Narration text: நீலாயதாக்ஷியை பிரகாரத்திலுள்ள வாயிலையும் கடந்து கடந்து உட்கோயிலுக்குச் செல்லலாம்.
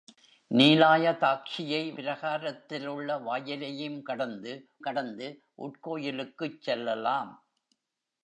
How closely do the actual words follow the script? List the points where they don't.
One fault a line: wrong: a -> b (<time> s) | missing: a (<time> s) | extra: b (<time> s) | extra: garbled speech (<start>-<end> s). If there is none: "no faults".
no faults